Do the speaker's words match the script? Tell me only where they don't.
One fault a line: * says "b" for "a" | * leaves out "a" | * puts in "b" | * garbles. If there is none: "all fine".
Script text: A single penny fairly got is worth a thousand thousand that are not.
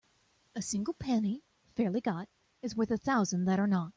* leaves out "thousand"